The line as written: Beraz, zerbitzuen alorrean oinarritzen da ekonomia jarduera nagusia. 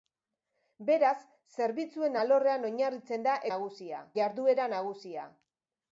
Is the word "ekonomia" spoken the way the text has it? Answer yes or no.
no